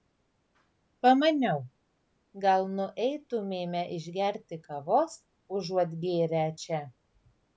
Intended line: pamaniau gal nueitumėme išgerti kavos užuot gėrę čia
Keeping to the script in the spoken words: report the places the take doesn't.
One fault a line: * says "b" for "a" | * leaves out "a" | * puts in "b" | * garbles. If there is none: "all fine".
all fine